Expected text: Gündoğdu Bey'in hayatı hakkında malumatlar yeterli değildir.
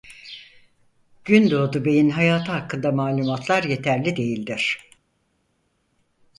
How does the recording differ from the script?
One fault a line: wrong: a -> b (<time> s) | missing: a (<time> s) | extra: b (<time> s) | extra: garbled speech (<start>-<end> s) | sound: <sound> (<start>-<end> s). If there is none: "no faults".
no faults